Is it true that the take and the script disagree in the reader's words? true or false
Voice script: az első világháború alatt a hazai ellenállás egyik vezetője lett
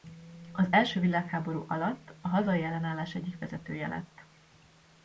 false